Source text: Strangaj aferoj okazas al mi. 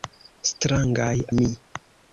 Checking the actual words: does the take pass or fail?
fail